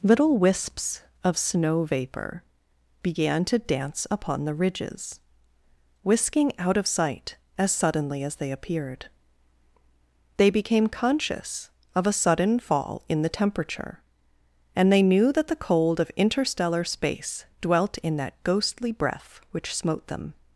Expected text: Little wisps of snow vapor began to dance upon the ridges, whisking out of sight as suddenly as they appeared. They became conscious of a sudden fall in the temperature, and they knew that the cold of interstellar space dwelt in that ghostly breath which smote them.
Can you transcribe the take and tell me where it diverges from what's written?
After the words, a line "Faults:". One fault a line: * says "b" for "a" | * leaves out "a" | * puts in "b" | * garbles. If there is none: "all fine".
Little wisps of snow vapor began to dance upon the ridges, whisking out of sight as suddenly as they appeared. They became conscious of a sudden fall in the temperature, and they knew that the cold of interstellar space dwelt in that ghostly breath which smote them.
Faults:
all fine